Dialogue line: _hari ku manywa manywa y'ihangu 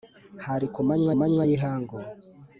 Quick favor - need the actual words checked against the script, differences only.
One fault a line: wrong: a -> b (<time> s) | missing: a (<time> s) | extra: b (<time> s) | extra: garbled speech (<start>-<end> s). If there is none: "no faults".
no faults